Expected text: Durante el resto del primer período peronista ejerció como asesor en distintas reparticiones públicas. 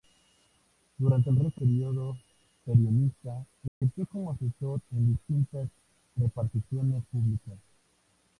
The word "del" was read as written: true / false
false